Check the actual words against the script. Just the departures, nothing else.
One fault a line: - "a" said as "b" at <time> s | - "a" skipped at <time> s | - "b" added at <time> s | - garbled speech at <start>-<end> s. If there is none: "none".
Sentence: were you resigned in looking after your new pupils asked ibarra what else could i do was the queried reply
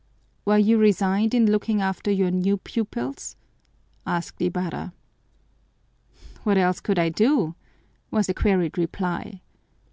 none